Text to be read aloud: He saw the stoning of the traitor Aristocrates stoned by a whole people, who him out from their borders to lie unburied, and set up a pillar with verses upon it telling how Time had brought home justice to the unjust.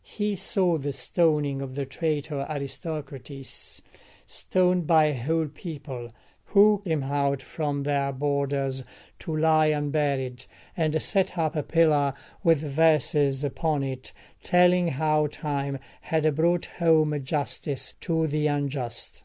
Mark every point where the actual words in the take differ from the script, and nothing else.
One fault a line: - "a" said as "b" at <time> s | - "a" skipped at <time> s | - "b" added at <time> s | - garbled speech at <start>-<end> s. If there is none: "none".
none